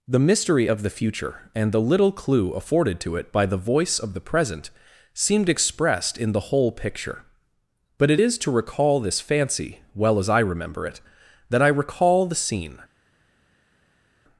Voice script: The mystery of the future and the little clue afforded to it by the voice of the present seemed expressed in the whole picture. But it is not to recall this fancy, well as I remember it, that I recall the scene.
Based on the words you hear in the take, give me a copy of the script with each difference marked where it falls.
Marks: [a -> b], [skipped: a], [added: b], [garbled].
The mystery of the future and the little clue afforded to it by the voice of the present seemed expressed in the whole picture. But it is [skipped: not] to recall this fancy, well as I remember it, that I recall the scene.